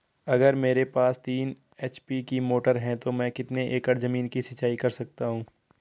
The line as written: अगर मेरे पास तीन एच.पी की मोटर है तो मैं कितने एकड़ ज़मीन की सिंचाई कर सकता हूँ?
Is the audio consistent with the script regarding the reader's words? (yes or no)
yes